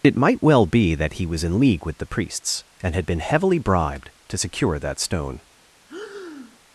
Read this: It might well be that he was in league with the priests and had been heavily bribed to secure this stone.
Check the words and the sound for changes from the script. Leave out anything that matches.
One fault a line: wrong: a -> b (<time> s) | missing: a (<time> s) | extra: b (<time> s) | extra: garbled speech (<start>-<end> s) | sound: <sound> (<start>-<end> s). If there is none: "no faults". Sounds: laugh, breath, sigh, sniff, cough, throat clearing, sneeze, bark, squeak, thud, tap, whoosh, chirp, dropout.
wrong: this -> that (4.8 s)
sound: breath (5.9-6.6 s)